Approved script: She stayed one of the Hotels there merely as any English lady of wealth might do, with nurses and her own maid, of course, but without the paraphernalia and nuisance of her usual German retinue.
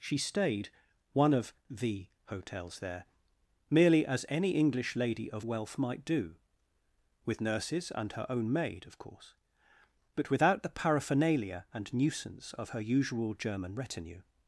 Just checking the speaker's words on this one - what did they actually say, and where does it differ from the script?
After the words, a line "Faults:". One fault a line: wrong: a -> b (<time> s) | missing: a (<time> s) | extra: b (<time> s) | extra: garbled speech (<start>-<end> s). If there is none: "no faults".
She stayed one of the Hotels there merely as any English lady of wealth might do, with nurses and her own maid, of course, but without the paraphernalia and nuisance of her usual German retinue.
Faults:
no faults